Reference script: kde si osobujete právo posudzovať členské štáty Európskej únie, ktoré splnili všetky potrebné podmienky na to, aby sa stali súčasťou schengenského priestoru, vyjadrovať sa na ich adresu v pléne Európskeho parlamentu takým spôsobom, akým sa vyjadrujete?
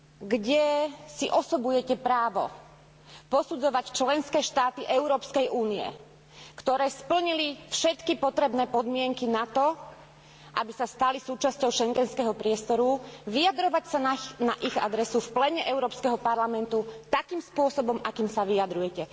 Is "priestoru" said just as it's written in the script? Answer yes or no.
yes